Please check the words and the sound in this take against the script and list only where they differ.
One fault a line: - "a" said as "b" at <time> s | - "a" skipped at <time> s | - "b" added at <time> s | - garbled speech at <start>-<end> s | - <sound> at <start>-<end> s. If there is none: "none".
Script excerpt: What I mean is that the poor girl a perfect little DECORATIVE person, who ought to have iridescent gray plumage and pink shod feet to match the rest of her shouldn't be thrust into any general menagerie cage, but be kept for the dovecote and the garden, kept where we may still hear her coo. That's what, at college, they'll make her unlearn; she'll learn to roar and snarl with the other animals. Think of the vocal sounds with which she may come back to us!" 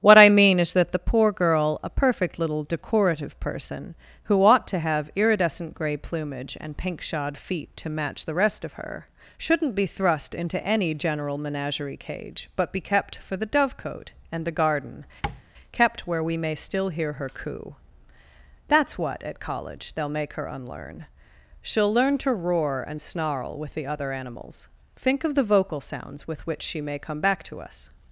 - tap at 15.2-15.4 s